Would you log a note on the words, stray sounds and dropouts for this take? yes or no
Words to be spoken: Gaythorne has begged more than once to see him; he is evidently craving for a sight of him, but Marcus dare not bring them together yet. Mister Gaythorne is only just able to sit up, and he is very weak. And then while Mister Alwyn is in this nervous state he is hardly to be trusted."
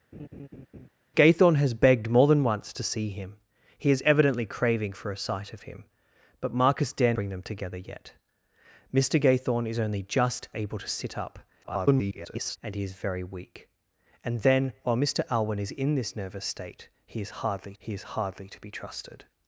yes